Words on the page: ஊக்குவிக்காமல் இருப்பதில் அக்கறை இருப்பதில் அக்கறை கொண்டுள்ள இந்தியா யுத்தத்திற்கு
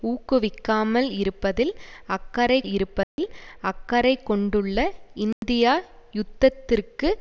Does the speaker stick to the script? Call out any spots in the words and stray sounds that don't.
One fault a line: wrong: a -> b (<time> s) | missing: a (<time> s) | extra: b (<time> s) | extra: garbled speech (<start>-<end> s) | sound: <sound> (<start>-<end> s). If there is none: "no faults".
sound: dropout (3.0-3.2 s)
sound: dropout (5.3-5.4 s)